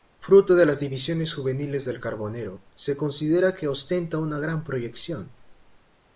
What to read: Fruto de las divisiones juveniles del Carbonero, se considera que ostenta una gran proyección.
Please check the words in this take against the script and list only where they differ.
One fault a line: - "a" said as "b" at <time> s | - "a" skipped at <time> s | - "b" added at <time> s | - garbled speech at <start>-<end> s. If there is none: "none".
none